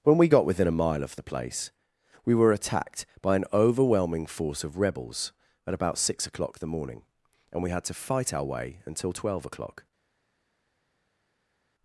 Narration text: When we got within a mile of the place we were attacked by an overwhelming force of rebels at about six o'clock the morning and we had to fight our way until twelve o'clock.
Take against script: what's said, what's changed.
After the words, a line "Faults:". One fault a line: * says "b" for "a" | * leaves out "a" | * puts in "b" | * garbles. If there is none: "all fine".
When we got within a mile of the place we were attacked by an overwhelming force of rebels at about six o'clock the morning and we had to fight our way until twelve o'clock.
Faults:
all fine